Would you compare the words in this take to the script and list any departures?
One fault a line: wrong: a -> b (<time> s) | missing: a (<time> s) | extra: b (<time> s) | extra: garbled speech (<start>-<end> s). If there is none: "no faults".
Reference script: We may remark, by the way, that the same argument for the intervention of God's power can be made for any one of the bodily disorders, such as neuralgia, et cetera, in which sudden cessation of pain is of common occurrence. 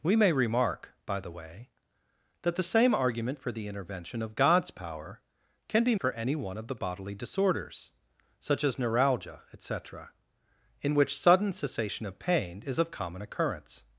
missing: made (5.9 s)